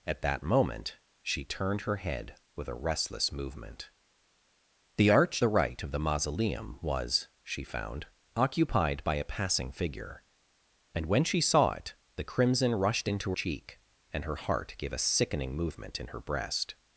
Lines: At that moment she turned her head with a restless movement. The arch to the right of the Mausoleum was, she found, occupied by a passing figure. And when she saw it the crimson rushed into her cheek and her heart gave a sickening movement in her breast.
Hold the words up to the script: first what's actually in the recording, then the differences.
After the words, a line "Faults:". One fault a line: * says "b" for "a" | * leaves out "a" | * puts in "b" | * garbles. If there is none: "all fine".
At that moment she turned her head with a restless movement. The arch the right of the Mausoleum was, she found, occupied by a passing figure. And when she saw it the crimson rushed into cheek and her heart gave a sickening movement in her breast.
Faults:
* leaves out "to"
* leaves out "her"